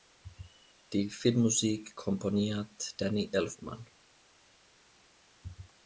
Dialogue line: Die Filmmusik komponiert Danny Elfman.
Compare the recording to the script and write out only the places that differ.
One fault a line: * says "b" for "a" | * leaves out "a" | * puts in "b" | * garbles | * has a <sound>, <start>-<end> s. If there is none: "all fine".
all fine